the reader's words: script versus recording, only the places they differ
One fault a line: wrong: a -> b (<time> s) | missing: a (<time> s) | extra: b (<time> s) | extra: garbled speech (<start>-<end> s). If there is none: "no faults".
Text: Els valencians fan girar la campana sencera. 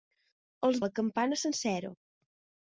missing: valencians fan girar (0.8 s)